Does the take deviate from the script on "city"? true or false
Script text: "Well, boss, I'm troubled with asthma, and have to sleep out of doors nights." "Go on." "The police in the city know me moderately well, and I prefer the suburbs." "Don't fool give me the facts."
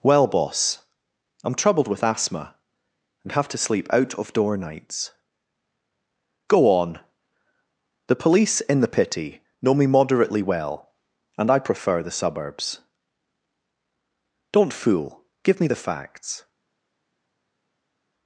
true